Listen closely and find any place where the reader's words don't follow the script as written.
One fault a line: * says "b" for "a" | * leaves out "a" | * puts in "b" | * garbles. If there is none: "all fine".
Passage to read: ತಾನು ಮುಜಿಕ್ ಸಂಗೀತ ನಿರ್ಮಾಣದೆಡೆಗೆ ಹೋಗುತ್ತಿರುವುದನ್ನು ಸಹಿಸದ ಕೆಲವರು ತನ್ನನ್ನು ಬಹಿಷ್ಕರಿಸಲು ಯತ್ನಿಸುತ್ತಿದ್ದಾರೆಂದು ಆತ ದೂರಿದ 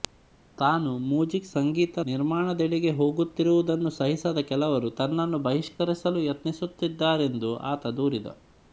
all fine